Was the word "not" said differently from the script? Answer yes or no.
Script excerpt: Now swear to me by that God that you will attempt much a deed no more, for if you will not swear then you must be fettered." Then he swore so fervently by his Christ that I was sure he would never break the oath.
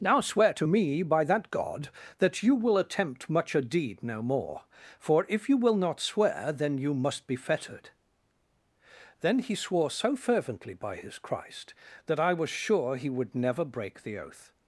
no